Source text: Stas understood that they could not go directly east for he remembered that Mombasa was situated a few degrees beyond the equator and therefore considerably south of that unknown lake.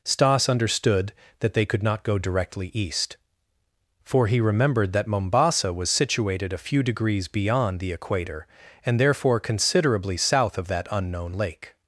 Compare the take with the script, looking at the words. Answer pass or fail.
pass